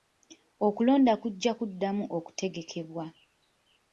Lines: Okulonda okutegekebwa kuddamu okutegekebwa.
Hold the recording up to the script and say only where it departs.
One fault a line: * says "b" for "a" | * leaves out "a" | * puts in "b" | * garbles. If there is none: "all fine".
* says "kujja" for "okutegekebwa"